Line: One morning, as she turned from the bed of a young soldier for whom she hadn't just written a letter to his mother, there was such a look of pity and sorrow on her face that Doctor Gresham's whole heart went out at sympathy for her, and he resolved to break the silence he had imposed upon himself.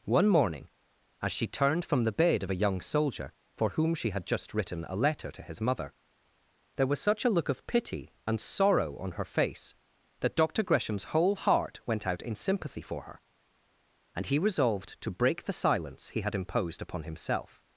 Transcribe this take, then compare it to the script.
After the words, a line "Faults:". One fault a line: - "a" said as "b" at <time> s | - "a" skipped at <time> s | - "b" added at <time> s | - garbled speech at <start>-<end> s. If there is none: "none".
One morning, as she turned from the bed of a young soldier for whom she had just written a letter to his mother, there was such a look of pity and sorrow on her face that Doctor Gresham's whole heart went out in sympathy for her, and he resolved to break the silence he had imposed upon himself.
Faults:
- "hadn't" said as "had" at 4.1 s
- "at" said as "in" at 12.2 s